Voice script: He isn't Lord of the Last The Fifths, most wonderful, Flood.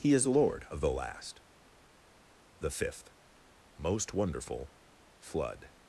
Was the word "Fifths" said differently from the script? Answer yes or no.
yes